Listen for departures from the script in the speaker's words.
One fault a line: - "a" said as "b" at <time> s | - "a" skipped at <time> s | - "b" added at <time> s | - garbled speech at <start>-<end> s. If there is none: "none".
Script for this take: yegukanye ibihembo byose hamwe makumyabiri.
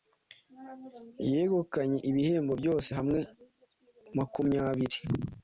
none